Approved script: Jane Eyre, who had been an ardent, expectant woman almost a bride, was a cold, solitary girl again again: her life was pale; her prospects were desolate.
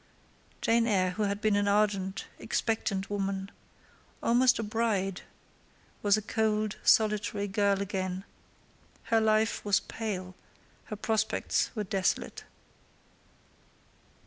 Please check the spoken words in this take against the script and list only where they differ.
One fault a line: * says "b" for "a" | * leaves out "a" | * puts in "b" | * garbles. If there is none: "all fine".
* leaves out "again"